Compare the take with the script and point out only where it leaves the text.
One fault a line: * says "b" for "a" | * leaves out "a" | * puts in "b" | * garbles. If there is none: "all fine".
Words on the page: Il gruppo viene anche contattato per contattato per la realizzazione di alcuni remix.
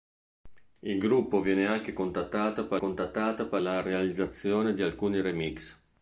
all fine